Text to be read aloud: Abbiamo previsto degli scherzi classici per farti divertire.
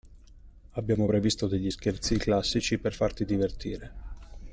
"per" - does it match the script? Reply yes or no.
yes